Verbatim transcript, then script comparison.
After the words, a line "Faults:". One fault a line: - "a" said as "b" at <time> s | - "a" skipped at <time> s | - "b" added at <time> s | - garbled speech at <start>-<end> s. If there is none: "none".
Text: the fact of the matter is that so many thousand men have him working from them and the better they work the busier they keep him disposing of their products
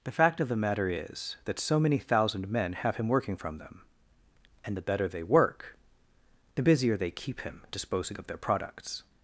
the fact of the matter is that so many thousand men have him working from them and the better they work the busier they keep him disposing of their products
Faults:
none